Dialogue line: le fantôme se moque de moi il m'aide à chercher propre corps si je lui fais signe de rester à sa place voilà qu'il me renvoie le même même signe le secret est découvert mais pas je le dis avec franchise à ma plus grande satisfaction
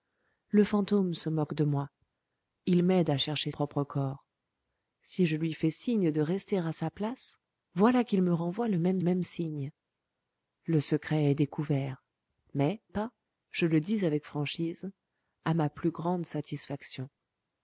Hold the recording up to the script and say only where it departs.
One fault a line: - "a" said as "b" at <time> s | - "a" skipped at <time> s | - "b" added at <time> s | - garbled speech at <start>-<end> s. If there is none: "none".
none